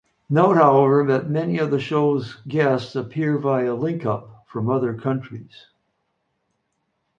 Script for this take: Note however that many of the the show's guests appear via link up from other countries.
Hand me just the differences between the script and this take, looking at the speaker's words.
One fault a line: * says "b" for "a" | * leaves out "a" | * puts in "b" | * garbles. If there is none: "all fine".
* leaves out "the"